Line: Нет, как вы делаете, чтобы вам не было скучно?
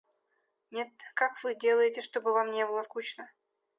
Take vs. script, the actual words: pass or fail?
pass